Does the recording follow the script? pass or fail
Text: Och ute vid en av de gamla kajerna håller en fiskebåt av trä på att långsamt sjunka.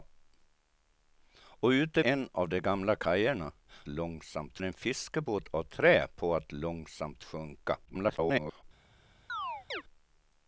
fail